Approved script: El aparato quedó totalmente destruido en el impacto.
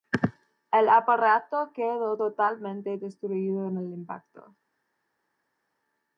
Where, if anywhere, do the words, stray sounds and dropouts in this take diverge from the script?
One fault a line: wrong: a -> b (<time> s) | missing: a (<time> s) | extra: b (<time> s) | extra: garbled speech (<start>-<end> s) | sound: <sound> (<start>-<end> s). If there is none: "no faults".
no faults